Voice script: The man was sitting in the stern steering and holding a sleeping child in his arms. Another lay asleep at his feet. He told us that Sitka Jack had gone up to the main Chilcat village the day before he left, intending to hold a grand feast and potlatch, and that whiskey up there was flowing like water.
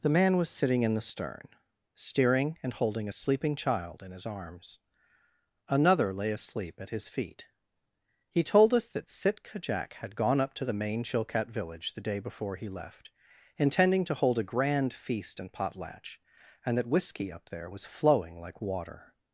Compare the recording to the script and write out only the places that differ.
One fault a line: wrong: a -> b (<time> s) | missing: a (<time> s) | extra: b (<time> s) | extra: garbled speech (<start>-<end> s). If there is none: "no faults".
no faults